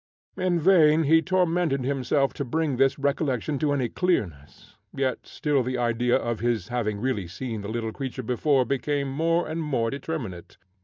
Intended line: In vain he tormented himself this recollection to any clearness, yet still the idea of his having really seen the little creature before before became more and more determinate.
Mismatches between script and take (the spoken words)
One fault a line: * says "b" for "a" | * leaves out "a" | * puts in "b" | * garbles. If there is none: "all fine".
* puts in "to bring"
* leaves out "before"